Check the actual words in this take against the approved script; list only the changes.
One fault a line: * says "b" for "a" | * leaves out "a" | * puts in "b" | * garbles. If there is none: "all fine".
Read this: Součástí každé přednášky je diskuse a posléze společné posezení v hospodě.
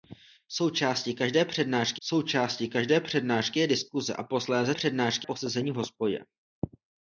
* puts in "součástí každé přednášky"
* says "přednášky" for "společné"